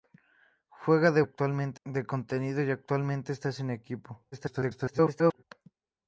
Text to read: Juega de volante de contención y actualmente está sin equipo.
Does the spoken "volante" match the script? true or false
false